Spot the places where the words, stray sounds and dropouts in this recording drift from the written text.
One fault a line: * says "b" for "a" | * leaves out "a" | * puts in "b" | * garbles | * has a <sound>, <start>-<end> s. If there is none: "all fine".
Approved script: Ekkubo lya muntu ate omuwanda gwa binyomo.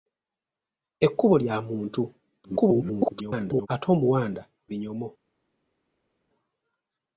* garbles
* leaves out "gwa"